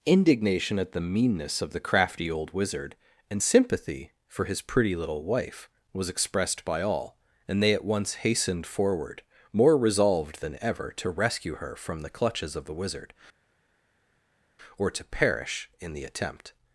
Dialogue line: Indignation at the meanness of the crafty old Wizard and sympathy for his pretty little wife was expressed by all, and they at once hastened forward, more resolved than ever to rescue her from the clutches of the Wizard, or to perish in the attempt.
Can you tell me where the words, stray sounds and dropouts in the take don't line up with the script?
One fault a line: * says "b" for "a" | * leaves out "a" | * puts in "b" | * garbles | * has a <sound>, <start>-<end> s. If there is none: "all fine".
all fine